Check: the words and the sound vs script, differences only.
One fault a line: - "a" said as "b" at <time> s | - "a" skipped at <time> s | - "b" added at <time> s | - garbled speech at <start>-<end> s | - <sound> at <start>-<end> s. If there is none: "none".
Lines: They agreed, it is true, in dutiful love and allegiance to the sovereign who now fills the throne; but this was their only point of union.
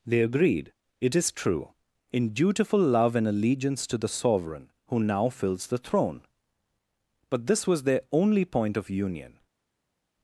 none